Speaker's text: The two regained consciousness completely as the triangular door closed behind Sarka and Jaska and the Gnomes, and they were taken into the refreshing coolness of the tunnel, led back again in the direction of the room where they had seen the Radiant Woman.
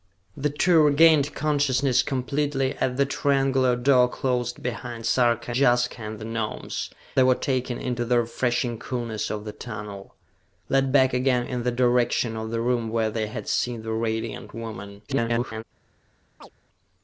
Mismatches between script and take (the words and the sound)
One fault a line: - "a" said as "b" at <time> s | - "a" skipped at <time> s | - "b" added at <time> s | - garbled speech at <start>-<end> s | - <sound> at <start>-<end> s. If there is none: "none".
- "and" skipped at 5.5 s
- "and" skipped at 6.9 s
- garbled speech at 15.1-15.6 s
- chirp at 16.4-16.5 s